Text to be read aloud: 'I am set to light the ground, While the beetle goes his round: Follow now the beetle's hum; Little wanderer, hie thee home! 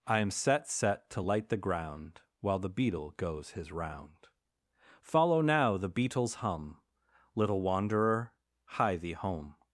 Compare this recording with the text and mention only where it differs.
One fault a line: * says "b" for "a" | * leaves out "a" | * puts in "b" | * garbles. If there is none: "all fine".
* puts in "set"